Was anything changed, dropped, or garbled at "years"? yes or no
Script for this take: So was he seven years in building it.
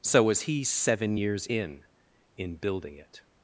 no